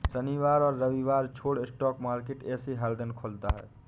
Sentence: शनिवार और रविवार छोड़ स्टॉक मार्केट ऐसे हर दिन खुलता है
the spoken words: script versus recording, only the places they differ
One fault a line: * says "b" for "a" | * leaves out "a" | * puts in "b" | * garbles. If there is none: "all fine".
all fine